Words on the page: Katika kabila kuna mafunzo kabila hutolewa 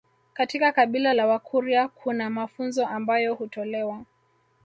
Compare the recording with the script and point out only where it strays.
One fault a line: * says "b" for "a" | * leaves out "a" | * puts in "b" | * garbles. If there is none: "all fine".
* puts in "la wakurya"
* says "ambayo" for "kabila"